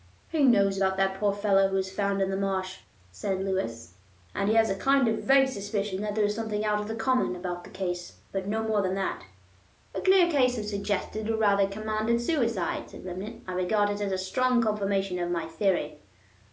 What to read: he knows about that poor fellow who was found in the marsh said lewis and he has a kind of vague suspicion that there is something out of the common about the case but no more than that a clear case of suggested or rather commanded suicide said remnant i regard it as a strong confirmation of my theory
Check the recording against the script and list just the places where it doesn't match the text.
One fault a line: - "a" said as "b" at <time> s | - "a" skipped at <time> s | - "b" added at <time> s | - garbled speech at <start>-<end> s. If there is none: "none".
none